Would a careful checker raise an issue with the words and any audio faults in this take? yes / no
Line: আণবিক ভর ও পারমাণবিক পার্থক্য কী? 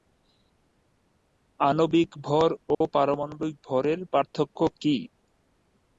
yes